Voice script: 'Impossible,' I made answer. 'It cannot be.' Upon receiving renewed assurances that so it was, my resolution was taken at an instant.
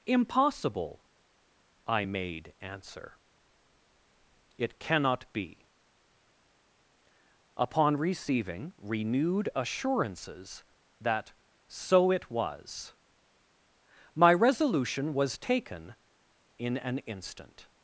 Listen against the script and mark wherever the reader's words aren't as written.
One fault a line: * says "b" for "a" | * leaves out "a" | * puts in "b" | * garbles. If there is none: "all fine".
* says "in" for "at"